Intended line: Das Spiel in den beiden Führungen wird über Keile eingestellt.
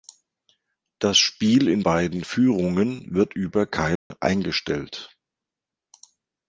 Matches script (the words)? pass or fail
fail